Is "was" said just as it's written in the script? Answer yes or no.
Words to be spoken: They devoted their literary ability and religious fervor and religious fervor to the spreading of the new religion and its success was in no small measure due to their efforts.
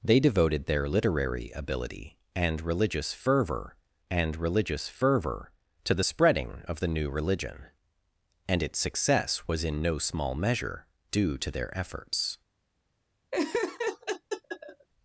yes